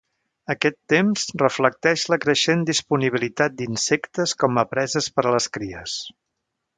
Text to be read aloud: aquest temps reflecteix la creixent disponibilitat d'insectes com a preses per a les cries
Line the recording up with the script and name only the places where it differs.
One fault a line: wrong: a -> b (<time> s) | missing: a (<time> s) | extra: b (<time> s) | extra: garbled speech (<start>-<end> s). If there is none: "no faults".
no faults